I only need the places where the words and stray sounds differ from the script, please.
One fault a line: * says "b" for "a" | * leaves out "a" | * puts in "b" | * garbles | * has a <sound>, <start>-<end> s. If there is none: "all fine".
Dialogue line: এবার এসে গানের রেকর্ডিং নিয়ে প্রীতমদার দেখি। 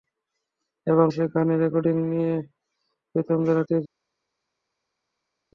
all fine